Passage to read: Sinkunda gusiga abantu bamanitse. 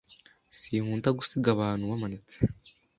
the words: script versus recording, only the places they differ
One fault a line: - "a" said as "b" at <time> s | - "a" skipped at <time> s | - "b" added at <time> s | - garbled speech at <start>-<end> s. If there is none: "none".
none